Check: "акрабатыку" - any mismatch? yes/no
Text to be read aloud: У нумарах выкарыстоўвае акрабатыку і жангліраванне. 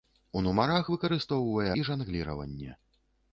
yes